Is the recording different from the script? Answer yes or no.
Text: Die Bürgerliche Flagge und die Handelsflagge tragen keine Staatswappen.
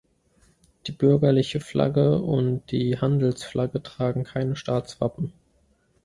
no